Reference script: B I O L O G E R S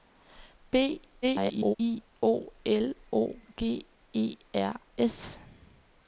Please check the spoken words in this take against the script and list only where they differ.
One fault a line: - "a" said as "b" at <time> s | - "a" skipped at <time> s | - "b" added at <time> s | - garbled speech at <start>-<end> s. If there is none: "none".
- garbled speech at 1.2-1.8 s